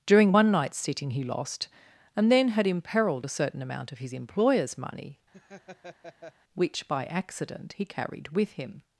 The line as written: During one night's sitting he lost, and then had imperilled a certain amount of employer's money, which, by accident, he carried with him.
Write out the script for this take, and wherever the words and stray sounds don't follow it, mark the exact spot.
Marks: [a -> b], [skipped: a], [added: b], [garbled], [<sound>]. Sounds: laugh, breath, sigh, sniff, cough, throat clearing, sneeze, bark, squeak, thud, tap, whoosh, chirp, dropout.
During one night's sitting he lost, and then had imperilled a certain amount of [added: his] employer's money, [laugh] which, by accident, he carried with him.